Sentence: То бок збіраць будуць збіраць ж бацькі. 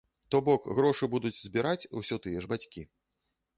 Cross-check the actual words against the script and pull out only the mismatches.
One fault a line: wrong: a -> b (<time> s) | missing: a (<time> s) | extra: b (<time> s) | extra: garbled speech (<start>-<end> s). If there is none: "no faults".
wrong: збіраць -> грошы (0.8 s)
extra: усё тыя (2.0 s)